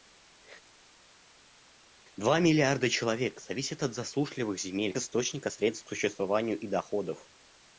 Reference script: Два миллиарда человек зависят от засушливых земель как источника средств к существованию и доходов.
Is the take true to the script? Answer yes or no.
no